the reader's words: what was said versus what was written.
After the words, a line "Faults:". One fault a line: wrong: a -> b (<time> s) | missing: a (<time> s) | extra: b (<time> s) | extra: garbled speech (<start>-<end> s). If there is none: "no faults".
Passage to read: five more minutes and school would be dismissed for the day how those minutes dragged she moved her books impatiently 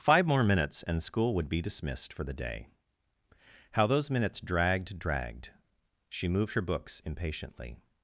five more minutes and school would be dismissed for the day how those minutes dragged dragged she moved her books impatiently
Faults:
extra: dragged (5.0 s)